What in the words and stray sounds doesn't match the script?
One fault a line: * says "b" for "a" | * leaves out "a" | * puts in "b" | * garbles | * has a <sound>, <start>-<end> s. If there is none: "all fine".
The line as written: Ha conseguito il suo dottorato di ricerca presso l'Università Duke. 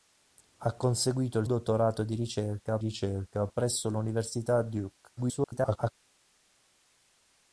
* leaves out "suo"
* puts in "ricerca"
* garbles